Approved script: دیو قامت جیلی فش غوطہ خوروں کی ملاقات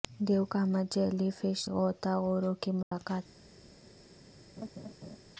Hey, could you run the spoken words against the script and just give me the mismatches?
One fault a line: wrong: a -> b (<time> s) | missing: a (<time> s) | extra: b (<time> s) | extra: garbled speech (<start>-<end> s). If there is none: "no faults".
no faults